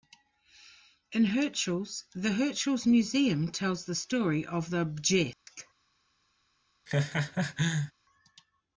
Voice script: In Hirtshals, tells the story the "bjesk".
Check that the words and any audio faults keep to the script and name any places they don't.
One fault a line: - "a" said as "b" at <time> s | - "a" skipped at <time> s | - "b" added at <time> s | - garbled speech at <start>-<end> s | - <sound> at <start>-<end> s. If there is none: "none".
- "the Hirtshals Museum" added at 2.1 s
- "of" added at 4.5 s
- dropout at 5.3-5.5 s
- laugh at 6.9-7.9 s